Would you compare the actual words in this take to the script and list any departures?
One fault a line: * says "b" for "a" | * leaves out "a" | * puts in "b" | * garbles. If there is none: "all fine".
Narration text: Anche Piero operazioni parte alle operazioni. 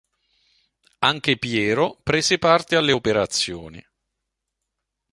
* says "prese" for "operazioni"